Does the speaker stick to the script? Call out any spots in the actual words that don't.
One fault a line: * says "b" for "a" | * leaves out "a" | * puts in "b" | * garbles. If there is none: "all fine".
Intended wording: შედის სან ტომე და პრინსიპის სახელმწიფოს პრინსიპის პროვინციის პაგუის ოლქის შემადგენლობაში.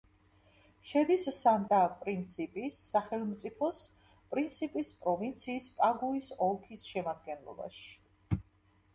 * leaves out "ტომე"